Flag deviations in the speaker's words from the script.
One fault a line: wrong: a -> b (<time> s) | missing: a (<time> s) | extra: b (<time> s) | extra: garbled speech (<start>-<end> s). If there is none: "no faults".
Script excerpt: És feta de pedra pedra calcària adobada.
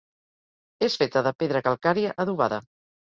missing: pedra (1.6 s)